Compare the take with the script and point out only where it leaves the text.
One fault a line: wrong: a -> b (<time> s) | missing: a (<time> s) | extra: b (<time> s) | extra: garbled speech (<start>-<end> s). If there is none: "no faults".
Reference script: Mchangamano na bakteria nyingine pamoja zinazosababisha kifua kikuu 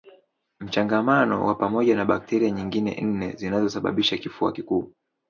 extra: wa pamoja (1.4 s)
wrong: pamoja -> nne (3.0 s)